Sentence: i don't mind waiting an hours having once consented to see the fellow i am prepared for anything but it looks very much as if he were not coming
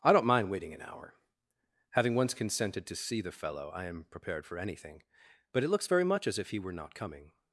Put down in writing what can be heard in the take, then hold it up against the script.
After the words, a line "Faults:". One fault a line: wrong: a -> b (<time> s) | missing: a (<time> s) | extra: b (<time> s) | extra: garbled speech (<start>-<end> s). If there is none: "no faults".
i don't mind waiting an hour having once consented to see the fellow i am prepared for anything but it looks very much as if he were not coming
Faults:
wrong: hours -> hour (0.8 s)